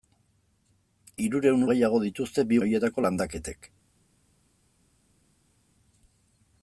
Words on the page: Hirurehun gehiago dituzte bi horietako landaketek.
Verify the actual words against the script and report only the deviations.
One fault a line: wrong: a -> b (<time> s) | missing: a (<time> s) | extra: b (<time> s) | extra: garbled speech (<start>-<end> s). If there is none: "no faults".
no faults